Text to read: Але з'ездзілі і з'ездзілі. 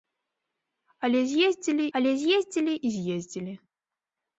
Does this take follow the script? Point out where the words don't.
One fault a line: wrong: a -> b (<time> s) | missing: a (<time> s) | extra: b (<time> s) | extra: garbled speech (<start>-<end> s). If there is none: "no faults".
extra: але з'ездзілі (2.0 s)